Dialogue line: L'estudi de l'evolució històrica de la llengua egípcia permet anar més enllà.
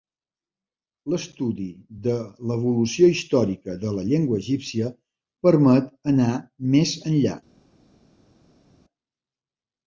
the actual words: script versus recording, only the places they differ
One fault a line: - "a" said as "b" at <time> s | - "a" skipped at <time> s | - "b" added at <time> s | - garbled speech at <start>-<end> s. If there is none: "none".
none